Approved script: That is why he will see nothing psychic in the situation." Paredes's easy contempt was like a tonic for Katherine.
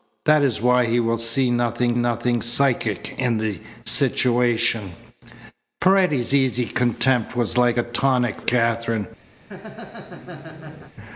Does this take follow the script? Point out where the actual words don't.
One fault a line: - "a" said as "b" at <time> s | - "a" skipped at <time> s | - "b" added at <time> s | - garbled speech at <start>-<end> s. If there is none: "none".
- "nothing" added at 2.0 s
- "for" skipped at 8.4 s